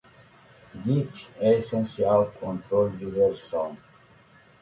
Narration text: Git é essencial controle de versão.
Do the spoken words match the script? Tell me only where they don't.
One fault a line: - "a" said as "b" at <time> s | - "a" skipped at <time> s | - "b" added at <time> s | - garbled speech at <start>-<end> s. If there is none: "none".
none